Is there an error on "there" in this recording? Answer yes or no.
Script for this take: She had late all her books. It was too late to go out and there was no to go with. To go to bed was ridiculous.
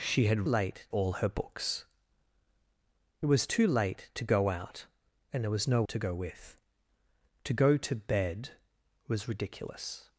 no